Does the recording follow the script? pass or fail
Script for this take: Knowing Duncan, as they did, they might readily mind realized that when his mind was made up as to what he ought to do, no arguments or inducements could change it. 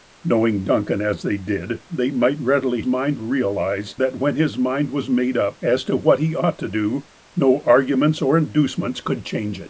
pass